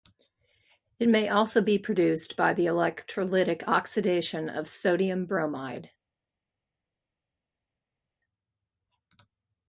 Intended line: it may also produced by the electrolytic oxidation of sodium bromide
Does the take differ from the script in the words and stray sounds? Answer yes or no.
yes